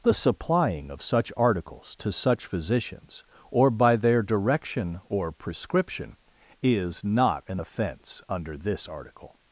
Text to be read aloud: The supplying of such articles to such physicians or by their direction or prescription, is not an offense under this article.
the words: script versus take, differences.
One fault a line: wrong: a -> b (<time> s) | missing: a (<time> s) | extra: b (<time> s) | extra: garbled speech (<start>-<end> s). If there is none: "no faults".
no faults